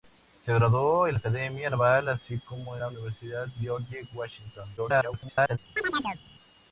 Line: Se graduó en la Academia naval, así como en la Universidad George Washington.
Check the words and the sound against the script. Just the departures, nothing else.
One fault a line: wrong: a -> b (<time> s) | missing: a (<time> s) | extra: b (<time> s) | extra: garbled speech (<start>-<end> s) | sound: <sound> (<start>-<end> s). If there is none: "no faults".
missing: la (1.2 s)
missing: en (2.8 s)
extra: garbled speech (4.8-5.6 s)
sound: chirp (5.8-6.2 s)